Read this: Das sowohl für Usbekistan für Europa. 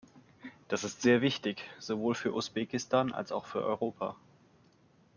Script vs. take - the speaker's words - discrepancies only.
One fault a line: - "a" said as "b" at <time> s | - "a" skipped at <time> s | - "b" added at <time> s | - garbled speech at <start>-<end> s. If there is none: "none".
- "ist sehr wichtig" added at 0.8 s
- "als auch" added at 3.1 s